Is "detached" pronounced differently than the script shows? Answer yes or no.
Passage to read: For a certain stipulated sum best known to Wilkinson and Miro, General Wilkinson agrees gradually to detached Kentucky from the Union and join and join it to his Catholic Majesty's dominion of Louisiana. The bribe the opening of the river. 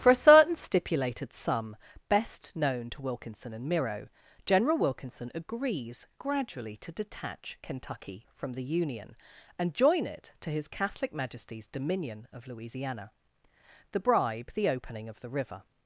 yes